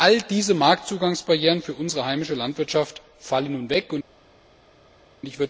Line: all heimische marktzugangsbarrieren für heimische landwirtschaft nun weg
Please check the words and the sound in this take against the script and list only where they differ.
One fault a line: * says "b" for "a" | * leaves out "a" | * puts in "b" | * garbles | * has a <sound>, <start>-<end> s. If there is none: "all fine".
* says "diese" for "heimische"
* puts in "unsere"
* puts in "fallen"